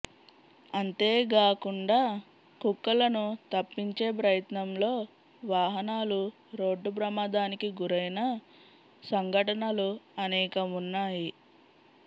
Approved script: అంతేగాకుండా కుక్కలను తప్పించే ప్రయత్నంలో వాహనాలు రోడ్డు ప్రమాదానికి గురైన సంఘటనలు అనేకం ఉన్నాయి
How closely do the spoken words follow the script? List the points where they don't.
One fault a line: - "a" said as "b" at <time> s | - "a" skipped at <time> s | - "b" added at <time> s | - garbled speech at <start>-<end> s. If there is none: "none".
none